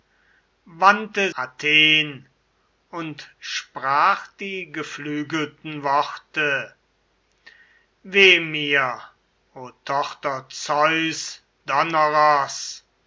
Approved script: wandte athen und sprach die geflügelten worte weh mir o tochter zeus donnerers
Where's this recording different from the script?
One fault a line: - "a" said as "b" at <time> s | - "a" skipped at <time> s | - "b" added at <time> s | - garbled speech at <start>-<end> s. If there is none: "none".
none